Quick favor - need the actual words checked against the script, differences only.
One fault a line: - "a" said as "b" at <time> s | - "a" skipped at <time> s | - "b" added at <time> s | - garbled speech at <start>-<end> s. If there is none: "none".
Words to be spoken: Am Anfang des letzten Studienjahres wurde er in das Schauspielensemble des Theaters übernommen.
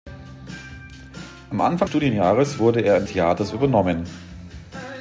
- "des letzten" skipped at 1.9 s
- "das Schauspielensemble des" skipped at 3.1 s